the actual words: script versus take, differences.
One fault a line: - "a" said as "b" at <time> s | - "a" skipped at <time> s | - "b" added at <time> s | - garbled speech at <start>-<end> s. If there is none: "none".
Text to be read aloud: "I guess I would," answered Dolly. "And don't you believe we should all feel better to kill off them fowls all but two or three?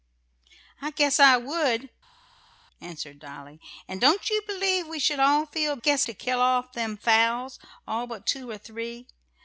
- "better" said as "guess" at 5.8 s